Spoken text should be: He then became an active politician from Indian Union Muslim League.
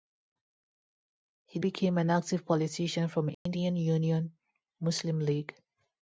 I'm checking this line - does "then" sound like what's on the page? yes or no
no